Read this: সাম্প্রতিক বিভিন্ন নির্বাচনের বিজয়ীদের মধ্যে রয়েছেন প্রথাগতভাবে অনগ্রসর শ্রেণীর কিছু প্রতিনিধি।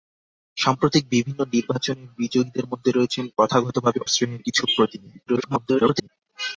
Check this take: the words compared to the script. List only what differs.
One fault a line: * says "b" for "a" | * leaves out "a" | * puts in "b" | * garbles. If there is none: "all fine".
* leaves out "অনগ্রসর"
* garbles